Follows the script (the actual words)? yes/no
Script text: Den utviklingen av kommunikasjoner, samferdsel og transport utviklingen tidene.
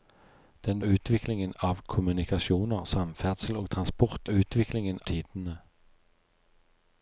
yes